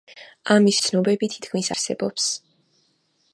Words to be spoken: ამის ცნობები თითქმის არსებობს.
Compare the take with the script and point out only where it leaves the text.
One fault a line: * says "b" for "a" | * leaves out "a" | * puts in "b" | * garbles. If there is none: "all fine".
all fine